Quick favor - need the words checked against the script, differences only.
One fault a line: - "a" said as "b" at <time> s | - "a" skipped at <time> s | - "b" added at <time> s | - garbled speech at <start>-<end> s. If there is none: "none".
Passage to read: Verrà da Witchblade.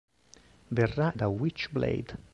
none